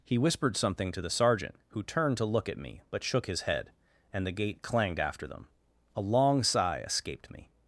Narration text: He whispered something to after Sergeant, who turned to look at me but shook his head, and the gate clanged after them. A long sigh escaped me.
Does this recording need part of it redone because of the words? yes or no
yes